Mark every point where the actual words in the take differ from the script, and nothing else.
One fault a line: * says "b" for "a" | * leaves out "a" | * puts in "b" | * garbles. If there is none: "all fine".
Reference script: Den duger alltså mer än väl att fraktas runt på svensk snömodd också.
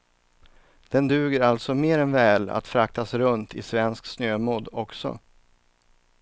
* says "i" for "på"